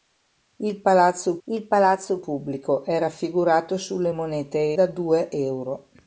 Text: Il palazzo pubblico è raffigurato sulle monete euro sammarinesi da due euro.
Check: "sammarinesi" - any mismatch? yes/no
yes